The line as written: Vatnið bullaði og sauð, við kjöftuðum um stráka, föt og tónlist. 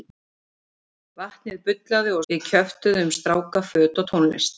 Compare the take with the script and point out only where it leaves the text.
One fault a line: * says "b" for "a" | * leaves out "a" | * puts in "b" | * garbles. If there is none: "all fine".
* leaves out "sauð"